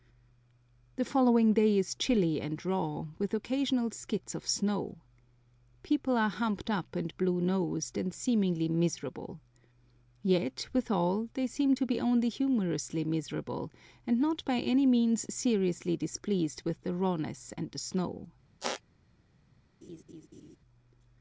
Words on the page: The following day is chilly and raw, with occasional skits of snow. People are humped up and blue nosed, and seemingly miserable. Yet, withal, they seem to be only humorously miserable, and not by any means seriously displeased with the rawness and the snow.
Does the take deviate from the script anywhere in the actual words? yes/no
no